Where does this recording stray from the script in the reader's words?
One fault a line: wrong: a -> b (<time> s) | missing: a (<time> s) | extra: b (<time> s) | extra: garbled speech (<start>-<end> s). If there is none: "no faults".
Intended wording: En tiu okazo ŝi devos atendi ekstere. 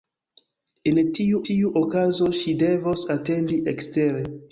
extra: tiu (1.5 s)